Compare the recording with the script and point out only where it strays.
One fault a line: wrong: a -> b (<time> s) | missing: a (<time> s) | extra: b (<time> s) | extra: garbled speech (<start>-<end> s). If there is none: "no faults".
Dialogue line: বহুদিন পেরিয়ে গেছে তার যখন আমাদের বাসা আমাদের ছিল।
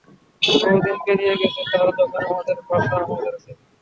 no faults